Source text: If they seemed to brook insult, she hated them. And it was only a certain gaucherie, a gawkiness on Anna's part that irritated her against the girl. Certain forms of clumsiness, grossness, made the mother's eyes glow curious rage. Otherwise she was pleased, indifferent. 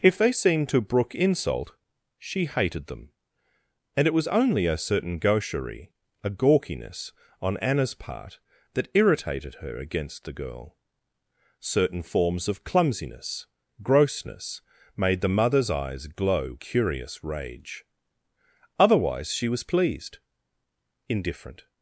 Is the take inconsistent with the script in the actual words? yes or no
no